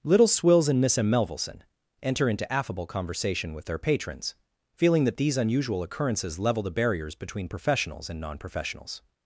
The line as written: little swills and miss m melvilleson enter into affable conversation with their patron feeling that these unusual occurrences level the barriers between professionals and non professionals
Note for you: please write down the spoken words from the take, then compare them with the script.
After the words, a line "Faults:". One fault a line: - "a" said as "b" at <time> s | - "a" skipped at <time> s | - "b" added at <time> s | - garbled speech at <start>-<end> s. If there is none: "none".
little swills and miss m melvilleson enter into affable conversation with their patrons feeling that these unusual occurrences level the barriers between professionals and non professionals
Faults:
- "patron" said as "patrons" at 3.8 s